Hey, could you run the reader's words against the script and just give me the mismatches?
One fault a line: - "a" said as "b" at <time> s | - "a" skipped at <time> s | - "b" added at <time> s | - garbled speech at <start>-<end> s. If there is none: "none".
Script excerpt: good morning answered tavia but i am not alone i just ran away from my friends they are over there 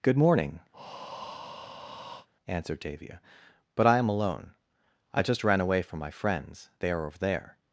- "not" skipped at 4.1 s